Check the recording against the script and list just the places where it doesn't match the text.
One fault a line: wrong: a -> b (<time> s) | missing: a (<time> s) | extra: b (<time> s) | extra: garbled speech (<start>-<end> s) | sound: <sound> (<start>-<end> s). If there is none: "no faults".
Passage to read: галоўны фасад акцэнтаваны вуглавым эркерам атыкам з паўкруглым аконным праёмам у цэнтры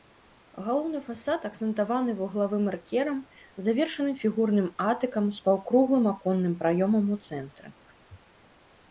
extra: завершаным фігурным (3.6 s)